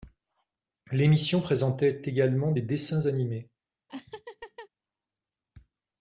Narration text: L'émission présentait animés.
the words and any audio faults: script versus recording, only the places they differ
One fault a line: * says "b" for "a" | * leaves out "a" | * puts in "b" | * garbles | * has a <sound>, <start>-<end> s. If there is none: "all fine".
* puts in "également des dessins"
* has a laugh, 3.9-4.7 s